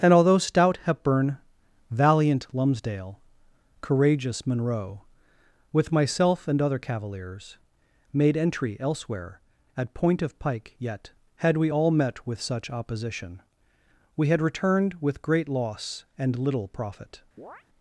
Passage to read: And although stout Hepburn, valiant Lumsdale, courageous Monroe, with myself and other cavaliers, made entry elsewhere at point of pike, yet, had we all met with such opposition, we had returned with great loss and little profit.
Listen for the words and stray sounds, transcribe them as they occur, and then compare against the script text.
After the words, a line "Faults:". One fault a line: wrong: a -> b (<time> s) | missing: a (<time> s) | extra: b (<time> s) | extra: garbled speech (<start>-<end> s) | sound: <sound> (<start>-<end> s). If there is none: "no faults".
And although stout Hepburn, valiant Lumsdale, courageous Monroe, with myself and other cavaliers, made entry elsewhere at point of pike, yet, had we all met with such opposition, we had returned with great loss and little profit.
Faults:
sound: chirp (17.4-17.6 s)